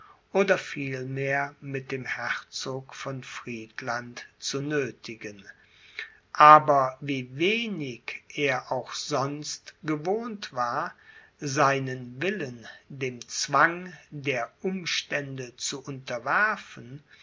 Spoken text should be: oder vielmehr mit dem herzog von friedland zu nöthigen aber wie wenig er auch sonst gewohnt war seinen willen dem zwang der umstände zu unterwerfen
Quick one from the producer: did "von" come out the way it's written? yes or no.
yes